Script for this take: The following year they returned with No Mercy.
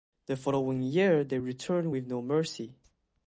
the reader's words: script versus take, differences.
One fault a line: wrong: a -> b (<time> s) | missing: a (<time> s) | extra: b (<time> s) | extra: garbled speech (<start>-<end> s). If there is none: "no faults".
no faults